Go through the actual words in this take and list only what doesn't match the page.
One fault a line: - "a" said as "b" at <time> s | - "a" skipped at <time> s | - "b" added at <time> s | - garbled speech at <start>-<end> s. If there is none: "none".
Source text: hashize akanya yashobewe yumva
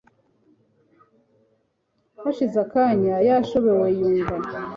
none